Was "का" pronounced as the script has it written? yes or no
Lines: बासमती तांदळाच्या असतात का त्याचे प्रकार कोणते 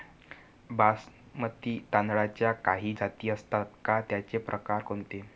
yes